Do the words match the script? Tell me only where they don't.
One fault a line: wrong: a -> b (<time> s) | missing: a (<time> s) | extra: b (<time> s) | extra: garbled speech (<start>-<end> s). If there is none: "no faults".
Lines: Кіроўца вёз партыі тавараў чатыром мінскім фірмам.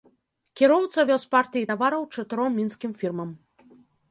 no faults